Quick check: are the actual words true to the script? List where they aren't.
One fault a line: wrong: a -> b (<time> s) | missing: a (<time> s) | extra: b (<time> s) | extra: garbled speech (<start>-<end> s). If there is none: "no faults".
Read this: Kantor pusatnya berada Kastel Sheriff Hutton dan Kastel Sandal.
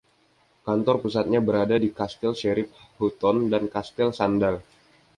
extra: di (1.7 s)